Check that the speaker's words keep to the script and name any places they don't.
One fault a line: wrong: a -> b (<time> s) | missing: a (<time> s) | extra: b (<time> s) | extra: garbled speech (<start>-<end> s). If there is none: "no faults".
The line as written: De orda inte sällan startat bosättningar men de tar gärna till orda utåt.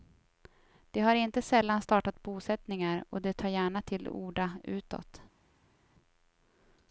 wrong: orda -> har (1.0 s)
wrong: men -> och (3.1 s)